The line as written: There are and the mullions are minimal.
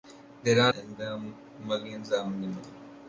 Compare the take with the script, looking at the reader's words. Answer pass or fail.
pass